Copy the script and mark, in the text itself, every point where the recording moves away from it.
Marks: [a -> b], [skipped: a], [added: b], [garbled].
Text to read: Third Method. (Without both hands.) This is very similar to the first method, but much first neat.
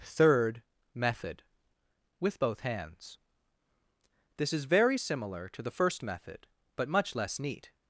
Third Method. [(Without -> With] both hands.) This is very similar to the first method, but much [first -> less] neat.